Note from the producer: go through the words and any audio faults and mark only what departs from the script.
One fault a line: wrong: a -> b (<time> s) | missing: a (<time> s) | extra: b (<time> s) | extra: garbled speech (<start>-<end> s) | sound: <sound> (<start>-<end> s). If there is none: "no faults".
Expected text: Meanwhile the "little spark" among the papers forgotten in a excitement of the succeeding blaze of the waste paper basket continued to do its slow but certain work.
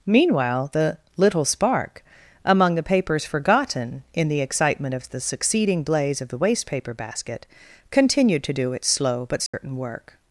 wrong: a -> the (4.3 s)
sound: dropout (9.5-9.5 s)